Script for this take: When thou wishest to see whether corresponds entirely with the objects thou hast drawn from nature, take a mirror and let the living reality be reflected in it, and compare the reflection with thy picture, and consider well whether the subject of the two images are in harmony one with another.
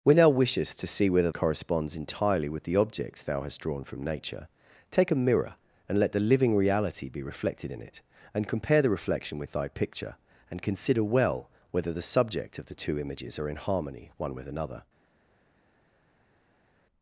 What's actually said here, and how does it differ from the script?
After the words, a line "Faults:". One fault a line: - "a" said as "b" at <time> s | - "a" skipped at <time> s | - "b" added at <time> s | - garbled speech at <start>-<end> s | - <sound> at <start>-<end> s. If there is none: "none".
When thou wishest to see whether corresponds entirely with the objects thou hast drawn from nature, take a mirror and let the living reality be reflected in it, and compare the reflection with thy picture, and consider well whether the subject of the two images are in harmony one with another.
Faults:
none